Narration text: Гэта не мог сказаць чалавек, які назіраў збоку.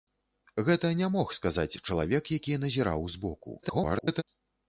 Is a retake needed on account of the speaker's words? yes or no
yes